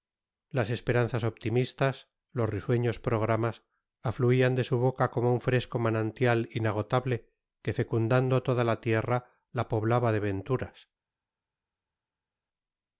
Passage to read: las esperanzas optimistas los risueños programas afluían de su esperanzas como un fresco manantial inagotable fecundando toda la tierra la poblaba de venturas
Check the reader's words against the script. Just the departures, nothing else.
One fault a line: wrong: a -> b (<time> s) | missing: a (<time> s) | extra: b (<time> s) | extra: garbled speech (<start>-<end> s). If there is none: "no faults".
wrong: esperanzas -> boca (4.8 s)
extra: que (7.6 s)